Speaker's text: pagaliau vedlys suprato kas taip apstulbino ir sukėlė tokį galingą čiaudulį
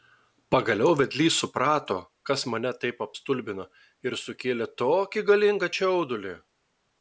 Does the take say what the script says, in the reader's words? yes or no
no